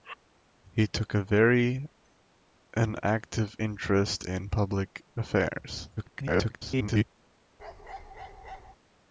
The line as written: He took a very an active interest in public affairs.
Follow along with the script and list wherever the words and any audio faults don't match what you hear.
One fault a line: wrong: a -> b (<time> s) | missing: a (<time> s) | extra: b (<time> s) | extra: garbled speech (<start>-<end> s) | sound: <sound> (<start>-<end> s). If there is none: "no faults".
extra: garbled speech (6.0-7.1 s)
sound: bark (7.6-8.8 s)